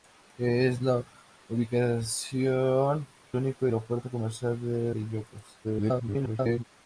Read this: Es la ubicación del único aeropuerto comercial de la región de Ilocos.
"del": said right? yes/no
no